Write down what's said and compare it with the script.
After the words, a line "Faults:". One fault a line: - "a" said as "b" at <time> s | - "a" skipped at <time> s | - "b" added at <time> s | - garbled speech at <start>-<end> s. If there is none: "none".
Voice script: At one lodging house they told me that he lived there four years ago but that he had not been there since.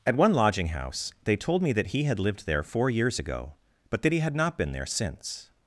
At one lodging house they told me that he had lived there four years ago but that he had not been there since.
Faults:
- "had" added at 2.0 s